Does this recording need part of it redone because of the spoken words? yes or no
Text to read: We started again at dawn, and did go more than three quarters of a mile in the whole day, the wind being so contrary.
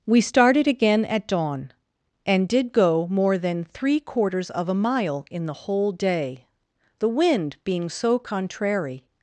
no